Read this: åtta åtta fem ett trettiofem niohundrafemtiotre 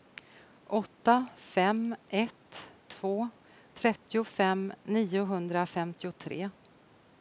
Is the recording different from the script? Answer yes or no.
yes